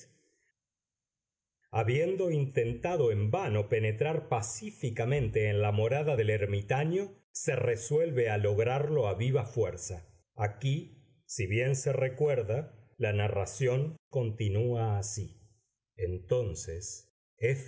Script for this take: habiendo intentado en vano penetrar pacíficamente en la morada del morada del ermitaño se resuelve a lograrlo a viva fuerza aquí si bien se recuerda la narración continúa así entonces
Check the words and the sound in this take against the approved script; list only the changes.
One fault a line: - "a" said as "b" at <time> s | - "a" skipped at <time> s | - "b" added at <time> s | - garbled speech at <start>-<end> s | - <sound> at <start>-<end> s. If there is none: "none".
- "morada del" skipped at 6.3 s